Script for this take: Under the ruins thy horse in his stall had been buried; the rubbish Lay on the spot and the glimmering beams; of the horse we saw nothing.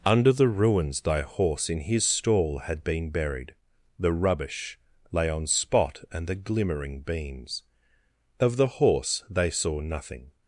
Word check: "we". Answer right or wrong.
wrong